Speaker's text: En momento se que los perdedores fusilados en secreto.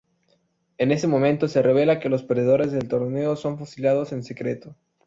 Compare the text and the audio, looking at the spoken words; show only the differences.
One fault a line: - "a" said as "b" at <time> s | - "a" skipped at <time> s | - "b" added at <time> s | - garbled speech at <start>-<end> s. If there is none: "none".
- "ese" added at 0.9 s
- "revela" added at 1.6 s
- "del torneo son" added at 2.7 s